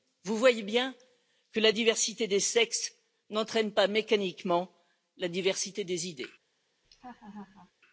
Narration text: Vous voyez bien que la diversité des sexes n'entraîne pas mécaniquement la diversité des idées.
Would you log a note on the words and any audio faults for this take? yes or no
yes